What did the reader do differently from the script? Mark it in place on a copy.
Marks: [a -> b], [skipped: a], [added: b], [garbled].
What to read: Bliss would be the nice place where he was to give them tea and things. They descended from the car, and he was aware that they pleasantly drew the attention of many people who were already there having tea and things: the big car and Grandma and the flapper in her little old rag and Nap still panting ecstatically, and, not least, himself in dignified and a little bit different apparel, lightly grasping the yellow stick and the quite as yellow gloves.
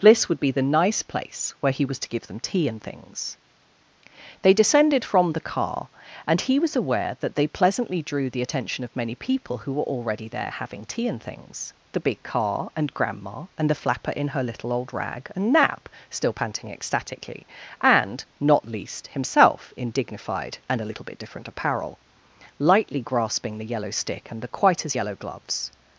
Bliss would be the nice place where he was to give them tea and things. They descended from the car, and he was aware that they pleasantly drew the attention of many people who were already there having tea and things: the big car and Grandma and the flapper in her little old rag and Nap still panting ecstatically, and, not least, himself in dignified and a little bit different apparel, lightly grasping the yellow stick and the quite as yellow gloves.